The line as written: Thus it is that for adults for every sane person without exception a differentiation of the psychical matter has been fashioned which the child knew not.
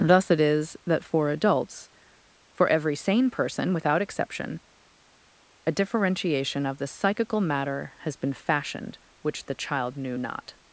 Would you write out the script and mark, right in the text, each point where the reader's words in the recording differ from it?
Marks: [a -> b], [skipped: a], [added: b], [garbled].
Thus it is that for adults for every sane person without exception a differentiation of the psychical matter has been fashioned which the child knew not.